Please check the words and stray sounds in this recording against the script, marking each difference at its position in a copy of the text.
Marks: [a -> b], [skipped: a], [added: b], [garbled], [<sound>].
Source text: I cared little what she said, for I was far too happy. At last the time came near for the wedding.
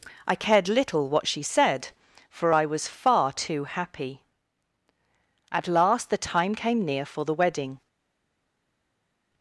I cared little what she said, for I was far too happy. At last the time came near for the wedding.